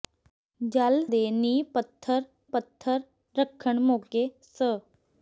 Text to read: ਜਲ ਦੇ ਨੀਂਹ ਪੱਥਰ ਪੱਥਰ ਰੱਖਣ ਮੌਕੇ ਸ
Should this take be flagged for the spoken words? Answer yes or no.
no